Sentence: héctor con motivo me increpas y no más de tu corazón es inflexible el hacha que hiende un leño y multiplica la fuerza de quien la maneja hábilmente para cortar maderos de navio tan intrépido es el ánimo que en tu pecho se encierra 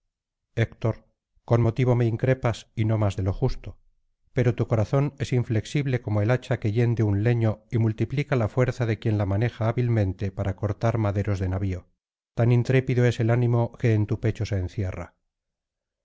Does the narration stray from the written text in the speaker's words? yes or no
yes